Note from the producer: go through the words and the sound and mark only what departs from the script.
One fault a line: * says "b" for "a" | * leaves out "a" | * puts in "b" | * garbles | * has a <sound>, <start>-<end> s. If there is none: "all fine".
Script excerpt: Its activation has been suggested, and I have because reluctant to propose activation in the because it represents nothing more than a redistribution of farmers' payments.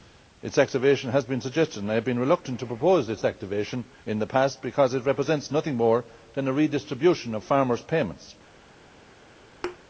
* says "been" for "because"
* puts in "its"
* puts in "past"
* has a thud, 9.6-9.8 s